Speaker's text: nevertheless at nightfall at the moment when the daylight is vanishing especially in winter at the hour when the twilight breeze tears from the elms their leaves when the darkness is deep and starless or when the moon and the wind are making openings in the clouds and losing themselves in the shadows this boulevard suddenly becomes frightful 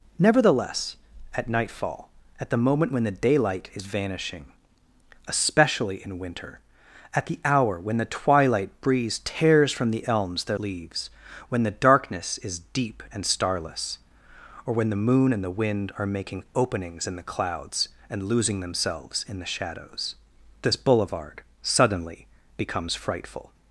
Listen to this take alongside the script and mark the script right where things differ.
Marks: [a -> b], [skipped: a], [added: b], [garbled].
nevertheless at nightfall at the moment when the daylight is vanishing especially in winter at the hour when the twilight breeze tears from the elms their leaves when the darkness is deep and starless or when the moon and the wind are making openings in the clouds and losing themselves in the shadows this boulevard suddenly becomes frightful